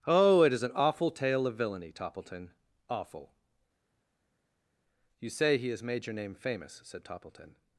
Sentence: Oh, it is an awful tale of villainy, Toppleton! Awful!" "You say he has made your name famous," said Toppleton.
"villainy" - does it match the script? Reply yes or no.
yes